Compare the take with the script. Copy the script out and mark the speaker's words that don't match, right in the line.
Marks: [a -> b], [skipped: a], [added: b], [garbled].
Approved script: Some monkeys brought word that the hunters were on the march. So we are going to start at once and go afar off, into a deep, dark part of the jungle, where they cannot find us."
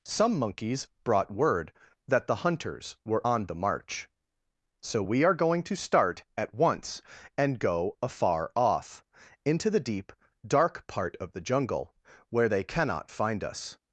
Some monkeys brought word that the hunters were on the march. So we are going to start at once and go afar off, into [a -> the] deep, dark part of the jungle, where they cannot find us."